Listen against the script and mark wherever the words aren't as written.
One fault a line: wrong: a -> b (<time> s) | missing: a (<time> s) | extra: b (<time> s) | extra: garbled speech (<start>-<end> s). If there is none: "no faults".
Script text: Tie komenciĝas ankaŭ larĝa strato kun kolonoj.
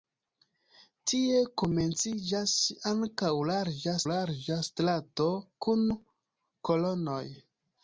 extra: larĝa (4.1 s)